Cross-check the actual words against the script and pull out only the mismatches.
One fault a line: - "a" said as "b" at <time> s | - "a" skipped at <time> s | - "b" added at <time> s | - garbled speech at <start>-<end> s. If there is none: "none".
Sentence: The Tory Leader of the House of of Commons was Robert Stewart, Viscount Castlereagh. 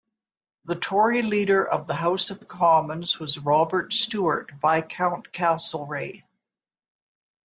none